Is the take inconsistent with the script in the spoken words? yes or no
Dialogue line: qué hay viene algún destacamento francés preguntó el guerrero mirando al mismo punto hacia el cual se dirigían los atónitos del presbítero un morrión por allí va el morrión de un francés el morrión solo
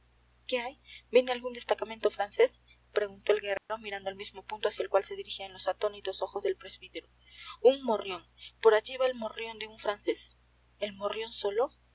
yes